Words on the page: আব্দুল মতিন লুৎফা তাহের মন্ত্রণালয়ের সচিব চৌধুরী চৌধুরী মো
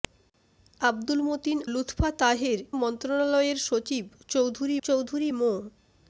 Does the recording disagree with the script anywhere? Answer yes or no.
no